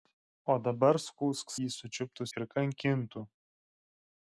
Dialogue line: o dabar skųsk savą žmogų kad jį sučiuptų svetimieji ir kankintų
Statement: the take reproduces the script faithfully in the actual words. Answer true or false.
false